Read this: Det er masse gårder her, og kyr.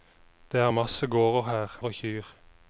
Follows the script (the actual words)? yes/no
yes